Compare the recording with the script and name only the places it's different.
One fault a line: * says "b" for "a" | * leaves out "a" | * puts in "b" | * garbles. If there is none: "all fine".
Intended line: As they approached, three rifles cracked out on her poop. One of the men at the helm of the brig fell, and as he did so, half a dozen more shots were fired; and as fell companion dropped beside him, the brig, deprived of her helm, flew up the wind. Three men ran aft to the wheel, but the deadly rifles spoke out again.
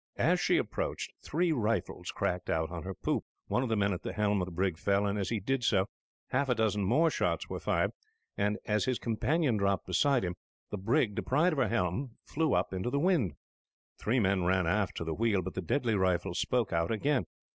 * says "she" for "they"
* says "his" for "fell"
* puts in "into"